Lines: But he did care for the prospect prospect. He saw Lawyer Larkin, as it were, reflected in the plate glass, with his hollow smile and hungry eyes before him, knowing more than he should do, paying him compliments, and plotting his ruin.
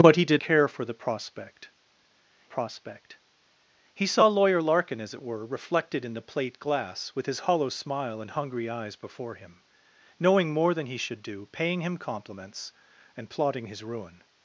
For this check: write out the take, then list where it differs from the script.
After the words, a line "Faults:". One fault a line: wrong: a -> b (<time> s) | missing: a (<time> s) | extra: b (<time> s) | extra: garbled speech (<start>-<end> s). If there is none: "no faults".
But he did care for the prospect prospect. He saw Lawyer Larkin, as it were, reflected in the plate glass, with his hollow smile and hungry eyes before him, knowing more than he should do, paying him compliments, and plotting his ruin.
Faults:
no faults